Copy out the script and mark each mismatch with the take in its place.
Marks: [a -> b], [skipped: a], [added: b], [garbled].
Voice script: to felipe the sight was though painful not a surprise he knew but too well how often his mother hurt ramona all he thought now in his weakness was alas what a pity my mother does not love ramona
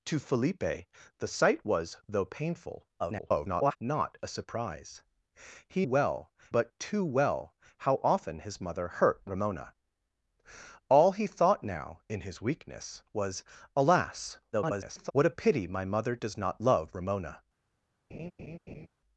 to felipe the sight was though painful [garbled] not a surprise he [knew -> well] but too well how often his mother hurt ramona all he thought now in his weakness was alas [garbled] what a pity my mother does not love ramona